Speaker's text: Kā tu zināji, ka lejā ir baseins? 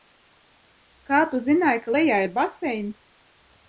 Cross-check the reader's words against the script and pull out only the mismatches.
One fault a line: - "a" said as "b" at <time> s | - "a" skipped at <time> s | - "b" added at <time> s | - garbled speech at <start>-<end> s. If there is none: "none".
none